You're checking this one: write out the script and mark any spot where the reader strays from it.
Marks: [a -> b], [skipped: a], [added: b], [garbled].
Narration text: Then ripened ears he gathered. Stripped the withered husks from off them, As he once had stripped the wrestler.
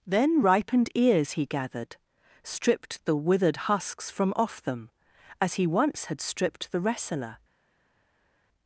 Then ripened ears he gathered. Stripped the withered husks from off them, As he once had stripped the wrestler.